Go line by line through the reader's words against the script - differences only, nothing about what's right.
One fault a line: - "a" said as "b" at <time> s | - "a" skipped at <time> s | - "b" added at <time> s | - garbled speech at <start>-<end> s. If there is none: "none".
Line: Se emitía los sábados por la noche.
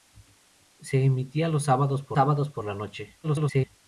- "sábados por" added at 2.1 s
- garbled speech at 3.2-3.7 s